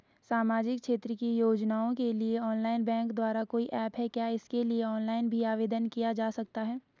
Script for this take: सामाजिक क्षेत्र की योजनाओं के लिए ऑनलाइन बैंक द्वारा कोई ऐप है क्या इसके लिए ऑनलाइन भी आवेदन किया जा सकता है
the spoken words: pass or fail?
pass